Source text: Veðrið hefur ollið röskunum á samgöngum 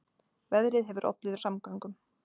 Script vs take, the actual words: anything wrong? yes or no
yes